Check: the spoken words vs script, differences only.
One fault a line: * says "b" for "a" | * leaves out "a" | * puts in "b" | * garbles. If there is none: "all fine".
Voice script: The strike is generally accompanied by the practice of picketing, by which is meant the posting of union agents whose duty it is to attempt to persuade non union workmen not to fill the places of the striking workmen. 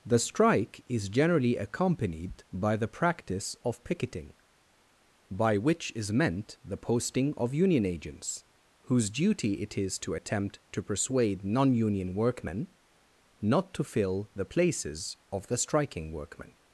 all fine